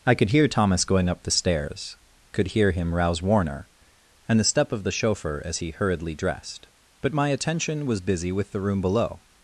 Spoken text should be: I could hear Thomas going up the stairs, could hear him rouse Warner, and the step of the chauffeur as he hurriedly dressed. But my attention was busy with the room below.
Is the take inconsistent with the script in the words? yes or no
no